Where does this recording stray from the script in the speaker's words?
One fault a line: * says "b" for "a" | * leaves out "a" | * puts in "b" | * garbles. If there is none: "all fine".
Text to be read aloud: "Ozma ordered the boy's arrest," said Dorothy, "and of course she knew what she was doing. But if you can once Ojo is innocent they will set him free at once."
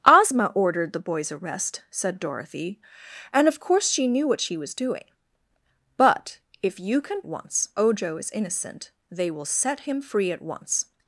all fine